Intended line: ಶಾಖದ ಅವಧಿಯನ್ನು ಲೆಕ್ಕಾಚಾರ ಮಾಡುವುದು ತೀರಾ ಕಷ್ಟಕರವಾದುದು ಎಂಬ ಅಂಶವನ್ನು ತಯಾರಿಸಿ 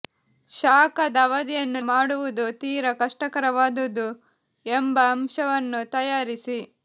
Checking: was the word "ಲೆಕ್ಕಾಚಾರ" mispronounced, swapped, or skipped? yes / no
yes